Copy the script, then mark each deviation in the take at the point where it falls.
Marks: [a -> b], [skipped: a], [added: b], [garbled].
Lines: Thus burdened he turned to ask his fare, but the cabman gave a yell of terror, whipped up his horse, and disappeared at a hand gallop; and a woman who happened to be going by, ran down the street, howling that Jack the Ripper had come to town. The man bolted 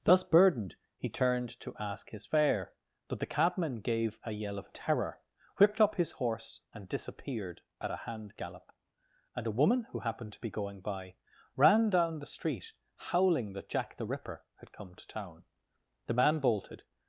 Thus burdened he turned to ask his fare, but the cabman gave a yell of terror, whipped up his horse, and disappeared at a hand gallop; and a woman who happened to be going by, ran down the street, howling that Jack the Ripper had come to town. The man bolted